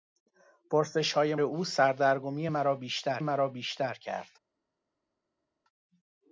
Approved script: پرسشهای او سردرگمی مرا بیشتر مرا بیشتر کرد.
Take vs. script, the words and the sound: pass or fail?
pass